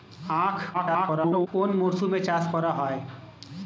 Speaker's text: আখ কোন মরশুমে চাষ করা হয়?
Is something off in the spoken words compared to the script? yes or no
yes